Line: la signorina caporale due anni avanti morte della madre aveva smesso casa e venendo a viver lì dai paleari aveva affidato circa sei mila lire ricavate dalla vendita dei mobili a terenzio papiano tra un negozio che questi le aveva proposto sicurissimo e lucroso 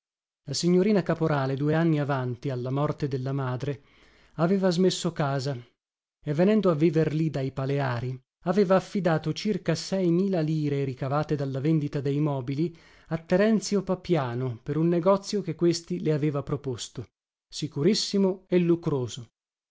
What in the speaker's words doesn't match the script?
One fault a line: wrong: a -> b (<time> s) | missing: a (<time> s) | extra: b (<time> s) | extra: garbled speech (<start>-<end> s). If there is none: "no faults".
extra: alla (2.5 s)
wrong: tra -> per (14.6 s)